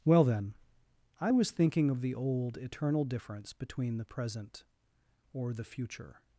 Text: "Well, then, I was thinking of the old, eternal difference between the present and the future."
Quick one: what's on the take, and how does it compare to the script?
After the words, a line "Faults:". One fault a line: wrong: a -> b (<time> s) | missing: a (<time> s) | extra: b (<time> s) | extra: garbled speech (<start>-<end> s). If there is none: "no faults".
"Well, then, I was thinking of the old, eternal difference between the present or the future."
Faults:
wrong: and -> or (5.3 s)